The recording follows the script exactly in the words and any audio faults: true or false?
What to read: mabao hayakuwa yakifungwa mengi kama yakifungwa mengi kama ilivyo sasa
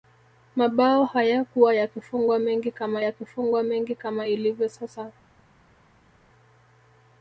true